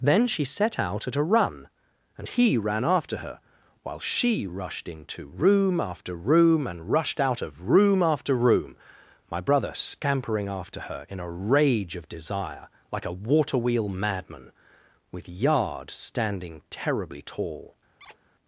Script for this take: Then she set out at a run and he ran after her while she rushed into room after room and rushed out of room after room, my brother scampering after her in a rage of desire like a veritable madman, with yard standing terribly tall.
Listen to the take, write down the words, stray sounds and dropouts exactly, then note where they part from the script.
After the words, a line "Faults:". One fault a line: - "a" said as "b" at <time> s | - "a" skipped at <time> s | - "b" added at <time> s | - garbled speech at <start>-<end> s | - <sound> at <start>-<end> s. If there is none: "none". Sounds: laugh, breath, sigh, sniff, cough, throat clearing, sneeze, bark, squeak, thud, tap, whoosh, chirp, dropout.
Then she set out at a run and he ran after her while she rushed into room after room and rushed out of room after room, my brother scampering after her in a rage of desire like a waterwheel madman, with yard standing terribly tall.
Faults:
- "veritable" said as "waterwheel" at 13.1 s
- squeak at 18.0-18.2 s